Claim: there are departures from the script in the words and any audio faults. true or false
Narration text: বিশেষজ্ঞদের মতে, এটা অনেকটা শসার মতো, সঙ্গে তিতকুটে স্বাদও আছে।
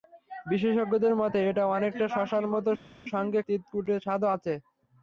false